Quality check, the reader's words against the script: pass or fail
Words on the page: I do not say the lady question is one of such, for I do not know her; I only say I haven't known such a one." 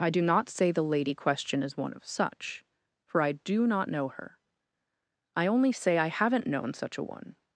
pass